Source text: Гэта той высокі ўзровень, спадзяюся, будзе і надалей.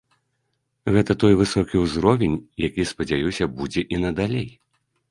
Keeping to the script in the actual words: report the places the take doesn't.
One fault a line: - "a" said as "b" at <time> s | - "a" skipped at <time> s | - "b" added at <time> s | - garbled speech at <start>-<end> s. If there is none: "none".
- "які" added at 2.7 s